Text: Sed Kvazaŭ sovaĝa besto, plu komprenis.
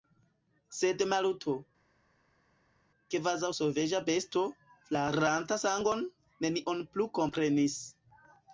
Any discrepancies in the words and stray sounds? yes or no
yes